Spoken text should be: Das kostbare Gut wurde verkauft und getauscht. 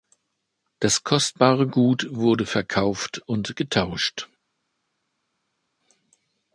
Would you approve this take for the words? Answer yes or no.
yes